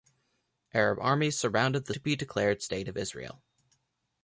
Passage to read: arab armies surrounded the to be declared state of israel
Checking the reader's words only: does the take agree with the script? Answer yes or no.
yes